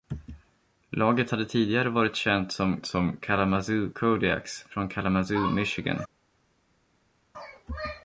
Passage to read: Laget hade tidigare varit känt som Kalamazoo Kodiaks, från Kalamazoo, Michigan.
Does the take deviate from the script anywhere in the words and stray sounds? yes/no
yes